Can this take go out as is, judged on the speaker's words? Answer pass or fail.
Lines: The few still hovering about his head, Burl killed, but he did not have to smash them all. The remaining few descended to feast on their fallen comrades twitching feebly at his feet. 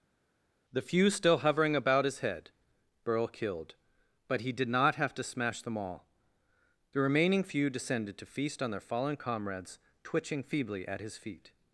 pass